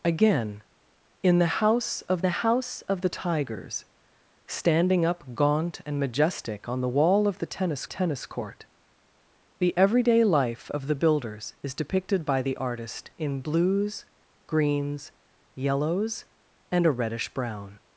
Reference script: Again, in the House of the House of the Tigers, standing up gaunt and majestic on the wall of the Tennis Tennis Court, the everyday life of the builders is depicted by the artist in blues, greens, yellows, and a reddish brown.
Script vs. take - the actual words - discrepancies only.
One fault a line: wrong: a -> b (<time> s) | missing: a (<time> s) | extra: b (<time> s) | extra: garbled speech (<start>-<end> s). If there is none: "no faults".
no faults